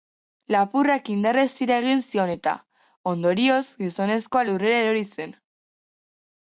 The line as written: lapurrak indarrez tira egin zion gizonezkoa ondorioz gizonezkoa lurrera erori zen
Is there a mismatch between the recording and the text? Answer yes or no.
yes